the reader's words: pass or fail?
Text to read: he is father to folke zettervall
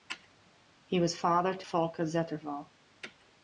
fail